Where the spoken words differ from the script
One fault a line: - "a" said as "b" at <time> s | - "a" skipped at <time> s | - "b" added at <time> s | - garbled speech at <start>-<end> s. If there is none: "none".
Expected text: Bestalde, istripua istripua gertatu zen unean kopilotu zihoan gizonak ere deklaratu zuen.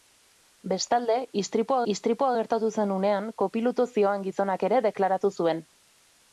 none